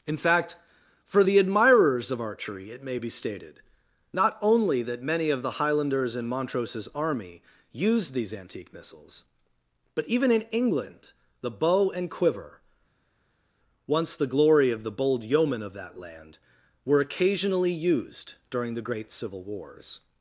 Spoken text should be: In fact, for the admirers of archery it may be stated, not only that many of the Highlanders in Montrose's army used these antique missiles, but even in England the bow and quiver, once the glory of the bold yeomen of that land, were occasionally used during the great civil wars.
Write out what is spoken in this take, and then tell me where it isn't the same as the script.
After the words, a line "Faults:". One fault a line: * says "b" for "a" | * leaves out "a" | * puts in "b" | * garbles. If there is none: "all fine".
In fact, for the admirers of archery it may be stated, not only that many of the Highlanders in Montrose's army used these antique missiles, but even in England the bow and quiver, once the glory of the bold yeomen of that land, were occasionally used during the great civil wars.
Faults:
all fine